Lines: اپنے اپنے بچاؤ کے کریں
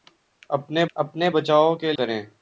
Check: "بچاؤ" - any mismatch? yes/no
no